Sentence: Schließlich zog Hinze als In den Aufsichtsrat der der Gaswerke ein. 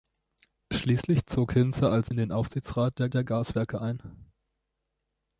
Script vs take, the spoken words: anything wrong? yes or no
no